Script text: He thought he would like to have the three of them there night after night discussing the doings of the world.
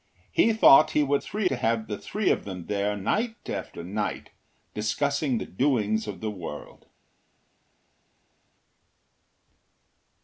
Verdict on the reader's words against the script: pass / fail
fail